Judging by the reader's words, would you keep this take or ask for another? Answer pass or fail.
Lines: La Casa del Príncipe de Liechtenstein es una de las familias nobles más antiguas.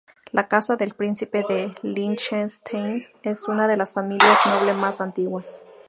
pass